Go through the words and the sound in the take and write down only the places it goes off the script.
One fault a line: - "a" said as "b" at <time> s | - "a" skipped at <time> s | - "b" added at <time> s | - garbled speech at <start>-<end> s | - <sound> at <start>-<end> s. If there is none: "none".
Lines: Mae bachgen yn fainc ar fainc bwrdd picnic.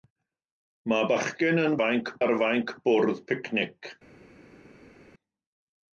none